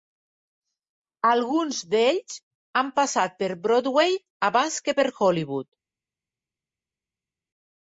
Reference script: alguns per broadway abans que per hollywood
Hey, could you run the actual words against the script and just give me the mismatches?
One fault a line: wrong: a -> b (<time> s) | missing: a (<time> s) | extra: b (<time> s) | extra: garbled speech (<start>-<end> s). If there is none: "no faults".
extra: d'ells han passat (1.9 s)